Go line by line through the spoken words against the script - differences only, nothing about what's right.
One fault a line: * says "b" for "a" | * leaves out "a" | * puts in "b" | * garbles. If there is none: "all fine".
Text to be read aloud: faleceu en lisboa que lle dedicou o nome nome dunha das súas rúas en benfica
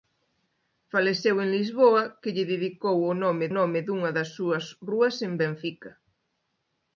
all fine